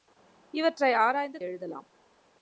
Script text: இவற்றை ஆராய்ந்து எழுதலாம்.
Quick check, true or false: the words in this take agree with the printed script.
true